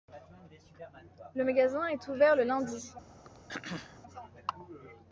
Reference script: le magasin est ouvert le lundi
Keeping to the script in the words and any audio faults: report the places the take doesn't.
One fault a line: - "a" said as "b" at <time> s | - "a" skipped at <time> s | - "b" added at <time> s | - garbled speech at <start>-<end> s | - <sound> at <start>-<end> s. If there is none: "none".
- throat clearing at 3.3-4.0 s